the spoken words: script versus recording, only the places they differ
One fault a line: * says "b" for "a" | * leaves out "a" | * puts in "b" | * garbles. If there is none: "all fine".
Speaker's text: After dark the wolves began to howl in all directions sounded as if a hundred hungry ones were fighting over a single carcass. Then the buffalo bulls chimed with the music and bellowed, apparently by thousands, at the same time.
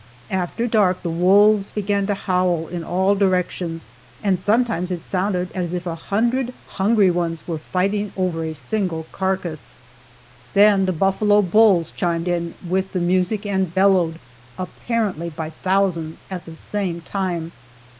* puts in "and sometimes it"
* puts in "in"